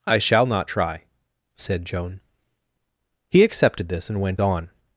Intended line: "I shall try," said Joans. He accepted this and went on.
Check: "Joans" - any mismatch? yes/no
yes